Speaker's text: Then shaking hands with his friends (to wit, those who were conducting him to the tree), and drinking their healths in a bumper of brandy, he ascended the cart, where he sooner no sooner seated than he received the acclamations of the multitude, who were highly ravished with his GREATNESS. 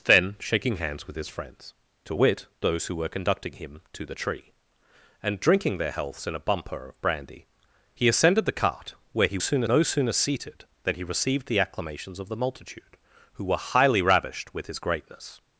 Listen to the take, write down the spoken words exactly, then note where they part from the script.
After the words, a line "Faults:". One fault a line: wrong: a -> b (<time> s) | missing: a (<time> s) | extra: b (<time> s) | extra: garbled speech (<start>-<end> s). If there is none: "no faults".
Then shaking hands with his friends (to wit, those who were conducting him to the tree), and drinking their healths in a bumper of brandy, he ascended the cart, where he sooner no sooner seated than he received the acclamations of the multitude, who were highly ravished with his GREATNESS.
Faults:
no faults